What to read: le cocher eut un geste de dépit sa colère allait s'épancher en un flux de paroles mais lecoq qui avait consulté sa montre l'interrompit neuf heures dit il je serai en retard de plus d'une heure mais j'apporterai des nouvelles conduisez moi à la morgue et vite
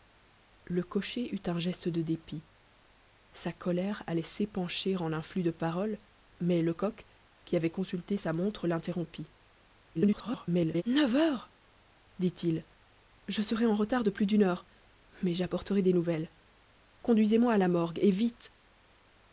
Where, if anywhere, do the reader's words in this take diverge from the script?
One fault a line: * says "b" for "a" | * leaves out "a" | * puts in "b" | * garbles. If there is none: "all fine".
* garbles